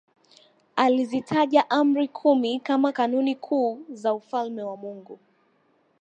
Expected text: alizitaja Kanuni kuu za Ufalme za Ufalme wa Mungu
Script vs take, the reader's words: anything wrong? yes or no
yes